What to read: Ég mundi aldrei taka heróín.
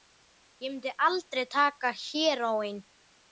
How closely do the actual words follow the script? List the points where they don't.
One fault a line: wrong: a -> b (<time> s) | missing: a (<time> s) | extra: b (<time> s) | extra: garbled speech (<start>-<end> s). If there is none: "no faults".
no faults